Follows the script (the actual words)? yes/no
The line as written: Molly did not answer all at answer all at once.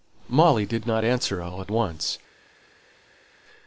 no